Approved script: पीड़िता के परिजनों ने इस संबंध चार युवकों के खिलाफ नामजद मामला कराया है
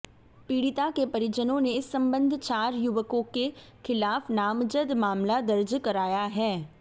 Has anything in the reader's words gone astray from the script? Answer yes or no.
yes